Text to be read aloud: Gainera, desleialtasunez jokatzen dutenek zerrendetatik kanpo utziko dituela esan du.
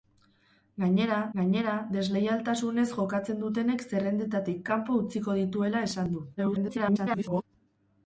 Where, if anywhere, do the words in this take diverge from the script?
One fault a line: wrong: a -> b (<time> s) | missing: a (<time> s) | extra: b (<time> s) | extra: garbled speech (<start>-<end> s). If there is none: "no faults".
extra: gainera (1.4 s)
extra: garbled speech (6.4-7.4 s)